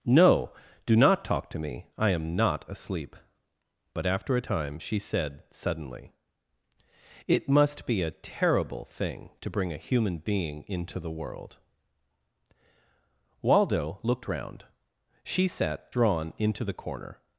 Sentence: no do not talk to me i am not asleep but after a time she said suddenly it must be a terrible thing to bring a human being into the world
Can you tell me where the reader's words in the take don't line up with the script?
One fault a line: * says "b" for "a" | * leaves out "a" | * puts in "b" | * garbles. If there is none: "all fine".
* puts in "waldo looked round she sat drawn into the corner"